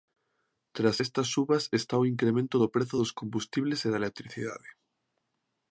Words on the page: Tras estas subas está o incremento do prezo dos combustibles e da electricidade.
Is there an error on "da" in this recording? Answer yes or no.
no